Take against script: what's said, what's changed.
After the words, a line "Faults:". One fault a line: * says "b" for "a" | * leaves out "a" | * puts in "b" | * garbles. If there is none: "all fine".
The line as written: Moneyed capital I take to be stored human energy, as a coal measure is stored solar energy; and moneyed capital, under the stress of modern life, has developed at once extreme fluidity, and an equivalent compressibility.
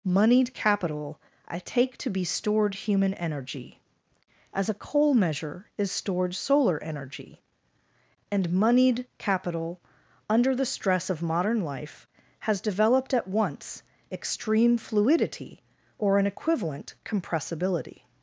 Moneyed capital I take to be stored human energy, as a coal measure is stored solar energy; and moneyed capital, under the stress of modern life, has developed at once extreme fluidity, or an equivalent compressibility.
Faults:
* says "or" for "and"